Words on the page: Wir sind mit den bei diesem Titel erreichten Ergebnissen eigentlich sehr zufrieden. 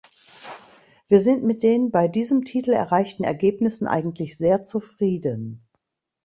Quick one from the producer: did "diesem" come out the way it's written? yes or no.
yes